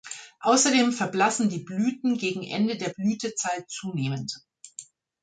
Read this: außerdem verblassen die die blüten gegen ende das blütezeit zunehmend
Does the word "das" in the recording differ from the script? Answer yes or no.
yes